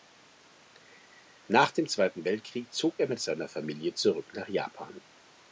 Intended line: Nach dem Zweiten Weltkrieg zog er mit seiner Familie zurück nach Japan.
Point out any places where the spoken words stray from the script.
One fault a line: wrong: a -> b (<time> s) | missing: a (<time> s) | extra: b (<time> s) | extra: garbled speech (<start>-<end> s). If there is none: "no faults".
no faults